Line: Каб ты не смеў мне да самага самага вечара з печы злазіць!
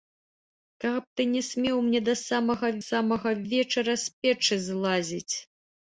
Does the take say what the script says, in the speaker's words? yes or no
yes